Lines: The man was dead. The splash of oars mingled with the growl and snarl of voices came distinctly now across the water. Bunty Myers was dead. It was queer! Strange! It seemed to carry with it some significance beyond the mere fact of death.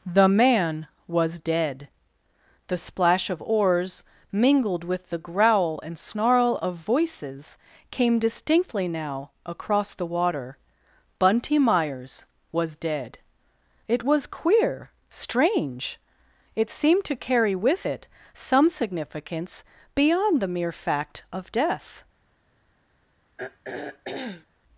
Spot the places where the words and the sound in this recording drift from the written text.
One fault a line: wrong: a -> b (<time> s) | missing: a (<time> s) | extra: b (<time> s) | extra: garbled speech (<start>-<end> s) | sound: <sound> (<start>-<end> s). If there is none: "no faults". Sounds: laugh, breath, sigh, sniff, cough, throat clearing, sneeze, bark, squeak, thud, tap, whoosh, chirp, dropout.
sound: throat clearing (23.4-24.5 s)